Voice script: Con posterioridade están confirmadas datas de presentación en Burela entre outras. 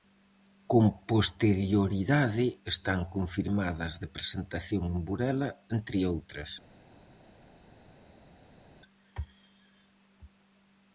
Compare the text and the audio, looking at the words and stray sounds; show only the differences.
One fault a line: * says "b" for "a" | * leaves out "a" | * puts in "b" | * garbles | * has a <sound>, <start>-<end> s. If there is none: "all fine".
* leaves out "datas"